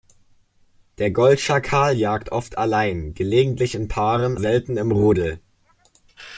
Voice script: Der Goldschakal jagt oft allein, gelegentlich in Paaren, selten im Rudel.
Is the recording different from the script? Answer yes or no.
no